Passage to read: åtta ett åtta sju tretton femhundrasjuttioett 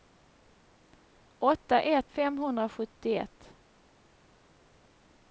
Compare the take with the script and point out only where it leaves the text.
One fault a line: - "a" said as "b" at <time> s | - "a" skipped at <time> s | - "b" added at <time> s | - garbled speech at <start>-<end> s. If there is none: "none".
- "åtta sju tretton" skipped at 2.1 s